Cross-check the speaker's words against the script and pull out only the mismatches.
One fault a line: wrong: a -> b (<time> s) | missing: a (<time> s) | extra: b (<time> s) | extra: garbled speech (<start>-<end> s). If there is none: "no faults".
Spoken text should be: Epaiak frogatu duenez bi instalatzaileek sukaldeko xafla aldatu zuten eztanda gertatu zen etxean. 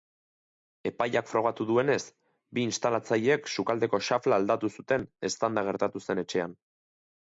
no faults